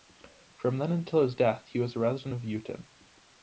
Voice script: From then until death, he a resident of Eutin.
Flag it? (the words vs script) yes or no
yes